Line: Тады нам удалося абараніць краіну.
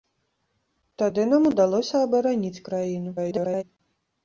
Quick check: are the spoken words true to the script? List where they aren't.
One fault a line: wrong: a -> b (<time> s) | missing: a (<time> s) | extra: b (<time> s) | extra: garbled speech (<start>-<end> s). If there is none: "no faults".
extra: garbled speech (3.2-3.6 s)